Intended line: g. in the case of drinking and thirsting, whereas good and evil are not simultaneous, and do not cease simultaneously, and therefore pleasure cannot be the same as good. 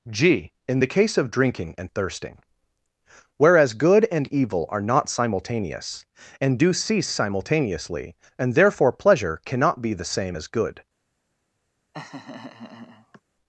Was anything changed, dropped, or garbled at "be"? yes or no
no